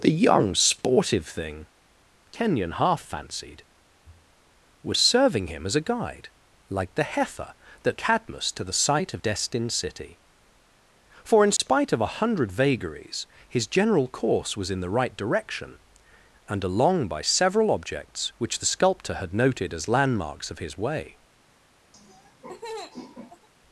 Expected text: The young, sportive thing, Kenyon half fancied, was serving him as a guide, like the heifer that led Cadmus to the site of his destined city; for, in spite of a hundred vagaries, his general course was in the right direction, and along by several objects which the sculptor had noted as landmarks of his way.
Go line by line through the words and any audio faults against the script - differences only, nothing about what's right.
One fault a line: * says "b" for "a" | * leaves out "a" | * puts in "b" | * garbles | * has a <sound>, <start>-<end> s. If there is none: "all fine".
* leaves out "led"
* leaves out "his"
* has a dropout, 11.6-11.6 s
* has a laugh, 21.9-23.5 s